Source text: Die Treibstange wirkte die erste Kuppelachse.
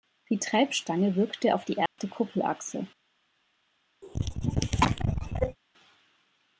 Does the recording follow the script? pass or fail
fail